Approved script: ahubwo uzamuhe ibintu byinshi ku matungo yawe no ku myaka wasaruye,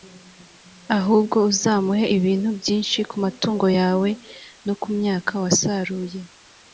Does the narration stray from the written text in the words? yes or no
no